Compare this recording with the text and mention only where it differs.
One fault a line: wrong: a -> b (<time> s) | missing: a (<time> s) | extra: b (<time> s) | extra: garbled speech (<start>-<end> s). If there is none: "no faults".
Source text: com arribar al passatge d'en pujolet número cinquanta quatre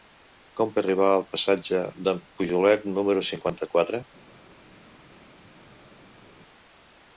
no faults